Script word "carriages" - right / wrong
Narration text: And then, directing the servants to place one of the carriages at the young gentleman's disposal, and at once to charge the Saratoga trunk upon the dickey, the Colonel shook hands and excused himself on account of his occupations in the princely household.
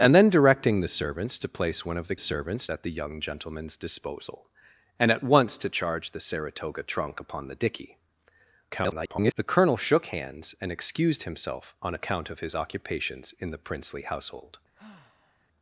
wrong